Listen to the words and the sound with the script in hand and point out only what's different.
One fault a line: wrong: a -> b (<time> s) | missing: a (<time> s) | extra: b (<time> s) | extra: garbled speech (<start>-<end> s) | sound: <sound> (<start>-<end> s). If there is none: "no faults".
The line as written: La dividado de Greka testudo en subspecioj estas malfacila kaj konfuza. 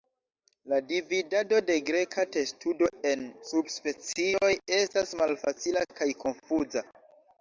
no faults